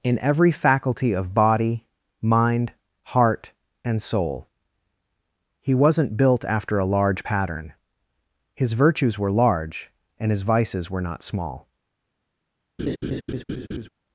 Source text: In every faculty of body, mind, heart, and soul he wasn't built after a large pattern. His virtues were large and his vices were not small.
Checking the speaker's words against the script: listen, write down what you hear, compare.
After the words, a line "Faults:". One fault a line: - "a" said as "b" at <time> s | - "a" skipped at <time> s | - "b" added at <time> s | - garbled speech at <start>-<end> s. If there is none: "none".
In every faculty of body, mind, heart, and soul he wasn't built after a large pattern. His virtues were large and his vices were not small.
Faults:
none